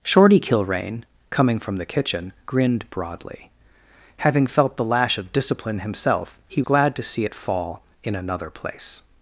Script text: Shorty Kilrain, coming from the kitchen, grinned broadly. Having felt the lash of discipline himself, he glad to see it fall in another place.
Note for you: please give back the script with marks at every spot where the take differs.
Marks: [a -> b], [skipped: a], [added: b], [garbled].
Shorty Kilrain, coming from the kitchen, grinned broadly. Having felt the lash of discipline himself, he glad to see it fall in another place.